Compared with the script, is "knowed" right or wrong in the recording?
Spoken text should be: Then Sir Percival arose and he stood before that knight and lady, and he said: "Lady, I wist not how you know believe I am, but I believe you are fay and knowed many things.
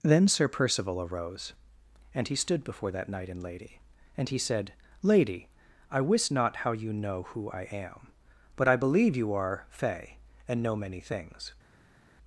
wrong